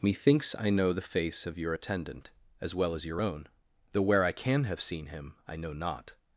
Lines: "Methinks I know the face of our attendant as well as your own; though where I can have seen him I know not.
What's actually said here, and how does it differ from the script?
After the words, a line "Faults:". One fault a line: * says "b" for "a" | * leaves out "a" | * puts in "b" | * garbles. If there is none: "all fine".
"Methinks I know the face of your attendant as well as your own; though where I can have seen him I know not.
Faults:
* says "your" for "our"